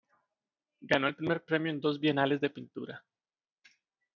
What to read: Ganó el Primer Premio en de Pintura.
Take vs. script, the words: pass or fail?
fail